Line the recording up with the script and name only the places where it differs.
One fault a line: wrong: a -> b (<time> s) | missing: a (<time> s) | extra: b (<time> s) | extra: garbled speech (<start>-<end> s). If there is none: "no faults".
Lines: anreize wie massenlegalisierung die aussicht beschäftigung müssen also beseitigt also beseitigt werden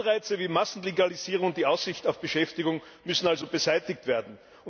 extra: und (1.5 s)
extra: auf (2.1 s)
missing: also beseitigt (4.1 s)